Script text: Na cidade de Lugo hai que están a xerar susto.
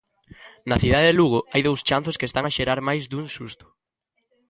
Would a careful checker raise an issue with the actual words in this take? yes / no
yes